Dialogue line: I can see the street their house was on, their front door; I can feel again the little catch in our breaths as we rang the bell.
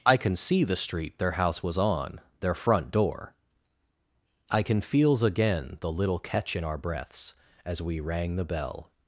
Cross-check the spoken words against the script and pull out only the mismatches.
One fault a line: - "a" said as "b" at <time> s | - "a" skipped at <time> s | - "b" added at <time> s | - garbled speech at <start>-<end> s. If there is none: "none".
- "feel" said as "feels" at 4.8 s